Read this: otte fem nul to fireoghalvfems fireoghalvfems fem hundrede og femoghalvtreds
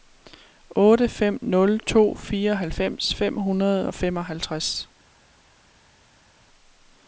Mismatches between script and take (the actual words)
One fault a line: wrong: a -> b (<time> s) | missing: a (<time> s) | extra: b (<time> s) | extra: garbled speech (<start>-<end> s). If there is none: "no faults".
missing: fireoghalvfems (3.1 s)